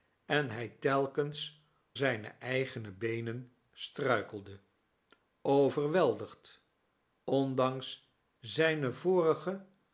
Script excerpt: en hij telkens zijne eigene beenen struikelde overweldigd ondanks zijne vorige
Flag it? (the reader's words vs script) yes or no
no